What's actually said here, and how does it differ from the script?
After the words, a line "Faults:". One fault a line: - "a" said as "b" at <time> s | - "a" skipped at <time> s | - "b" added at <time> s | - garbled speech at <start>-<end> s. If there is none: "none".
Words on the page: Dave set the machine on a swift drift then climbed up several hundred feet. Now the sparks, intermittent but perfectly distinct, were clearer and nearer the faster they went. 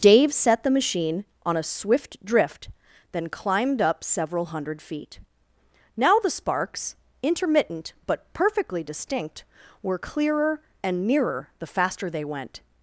Dave set the machine on a swift drift then climbed up several hundred feet. Now the sparks, intermittent but perfectly distinct, were clearer and nearer the faster they went.
Faults:
none